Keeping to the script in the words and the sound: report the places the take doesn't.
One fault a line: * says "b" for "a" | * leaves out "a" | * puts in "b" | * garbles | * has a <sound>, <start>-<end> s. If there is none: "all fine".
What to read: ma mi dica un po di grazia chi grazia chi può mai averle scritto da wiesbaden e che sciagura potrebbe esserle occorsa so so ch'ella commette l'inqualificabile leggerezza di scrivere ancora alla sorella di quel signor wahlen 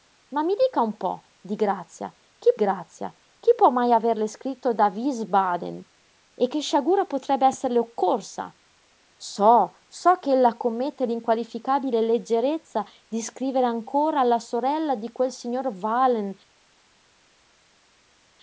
all fine